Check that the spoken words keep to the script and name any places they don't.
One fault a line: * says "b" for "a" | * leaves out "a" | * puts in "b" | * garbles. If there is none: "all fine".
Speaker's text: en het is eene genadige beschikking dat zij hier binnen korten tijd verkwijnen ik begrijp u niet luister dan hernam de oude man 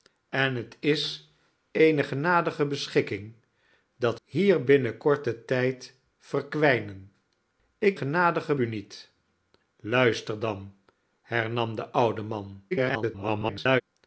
* leaves out "zij"
* says "genadige" for "begrijp"
* garbles